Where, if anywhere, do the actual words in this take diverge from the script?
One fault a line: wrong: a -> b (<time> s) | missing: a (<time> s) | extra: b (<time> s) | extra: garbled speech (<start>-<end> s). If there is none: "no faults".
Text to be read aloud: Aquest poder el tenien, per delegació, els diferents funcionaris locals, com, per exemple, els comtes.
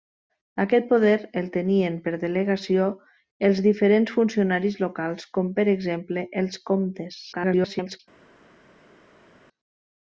extra: garbled speech (7.3-8.0 s)